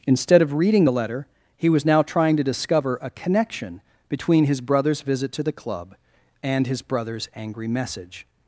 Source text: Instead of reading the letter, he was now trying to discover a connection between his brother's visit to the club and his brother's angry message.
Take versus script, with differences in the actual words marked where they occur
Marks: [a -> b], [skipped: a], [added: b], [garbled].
Instead of reading the letter, he was now trying to discover a connection between his brother's visit to the club and his brother's angry message.